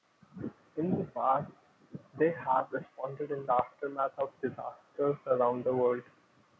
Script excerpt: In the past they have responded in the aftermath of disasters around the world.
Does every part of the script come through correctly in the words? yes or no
yes